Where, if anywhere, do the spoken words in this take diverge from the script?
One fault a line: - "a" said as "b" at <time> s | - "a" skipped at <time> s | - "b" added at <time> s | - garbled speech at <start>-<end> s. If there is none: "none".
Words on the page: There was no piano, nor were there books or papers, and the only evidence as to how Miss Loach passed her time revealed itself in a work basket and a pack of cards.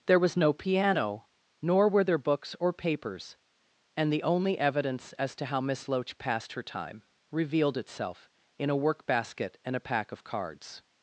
none